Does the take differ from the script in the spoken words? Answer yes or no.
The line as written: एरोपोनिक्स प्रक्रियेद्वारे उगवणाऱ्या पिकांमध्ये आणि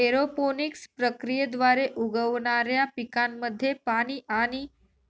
yes